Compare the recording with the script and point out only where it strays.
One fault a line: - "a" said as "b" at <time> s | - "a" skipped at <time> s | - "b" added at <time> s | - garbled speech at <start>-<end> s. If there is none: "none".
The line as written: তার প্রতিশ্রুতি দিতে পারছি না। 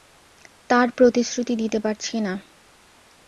none